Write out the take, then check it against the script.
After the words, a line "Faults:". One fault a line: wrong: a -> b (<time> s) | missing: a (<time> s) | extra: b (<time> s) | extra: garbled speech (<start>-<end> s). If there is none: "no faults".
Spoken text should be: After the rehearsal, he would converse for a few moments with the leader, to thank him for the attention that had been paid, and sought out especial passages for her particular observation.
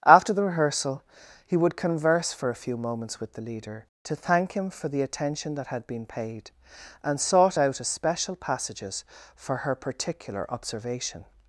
After the rehearsal, he would converse for a few moments with the leader, to thank him for the attention that had been paid, and sought out especial passages for her particular observation.
Faults:
no faults